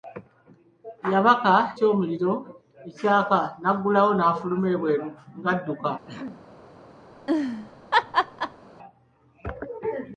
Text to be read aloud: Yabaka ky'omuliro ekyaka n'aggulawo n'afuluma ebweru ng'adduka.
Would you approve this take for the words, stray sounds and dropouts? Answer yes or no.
no